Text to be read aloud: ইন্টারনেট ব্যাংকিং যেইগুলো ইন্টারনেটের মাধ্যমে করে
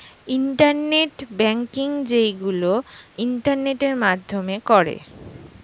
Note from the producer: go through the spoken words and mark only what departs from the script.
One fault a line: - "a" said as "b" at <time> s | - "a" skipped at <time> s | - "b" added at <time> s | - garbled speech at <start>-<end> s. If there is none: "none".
none